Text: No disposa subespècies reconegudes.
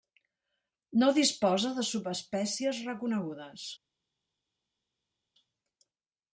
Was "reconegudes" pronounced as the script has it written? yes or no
yes